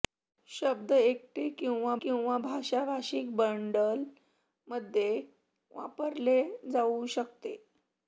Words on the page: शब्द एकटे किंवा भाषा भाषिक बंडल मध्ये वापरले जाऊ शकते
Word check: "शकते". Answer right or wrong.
right